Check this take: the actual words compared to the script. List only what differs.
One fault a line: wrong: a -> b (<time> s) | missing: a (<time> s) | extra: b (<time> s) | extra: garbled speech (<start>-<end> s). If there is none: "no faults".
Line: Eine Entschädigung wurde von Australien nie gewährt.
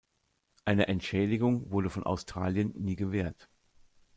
no faults